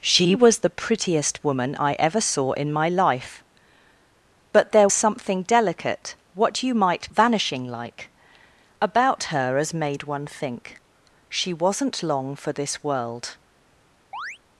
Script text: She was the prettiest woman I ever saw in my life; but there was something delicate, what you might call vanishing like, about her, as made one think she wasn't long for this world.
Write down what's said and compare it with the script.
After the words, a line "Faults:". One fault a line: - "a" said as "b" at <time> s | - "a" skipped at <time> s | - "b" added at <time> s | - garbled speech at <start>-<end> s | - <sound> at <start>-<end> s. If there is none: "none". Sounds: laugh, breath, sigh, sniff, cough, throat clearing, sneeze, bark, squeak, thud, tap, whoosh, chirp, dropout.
She was the prettiest woman I ever saw in my life; but there something delicate, what you might vanishing like, about her, as made one think she wasn't long for this world.
Faults:
- "was" skipped at 4.9 s
- "call" skipped at 7.1 s
- chirp at 14.1-14.4 s